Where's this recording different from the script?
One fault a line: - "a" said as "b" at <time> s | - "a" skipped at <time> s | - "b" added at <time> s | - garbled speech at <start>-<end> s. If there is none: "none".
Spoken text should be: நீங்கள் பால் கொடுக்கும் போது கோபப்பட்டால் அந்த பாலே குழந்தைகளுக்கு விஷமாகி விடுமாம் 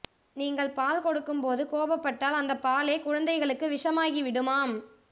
none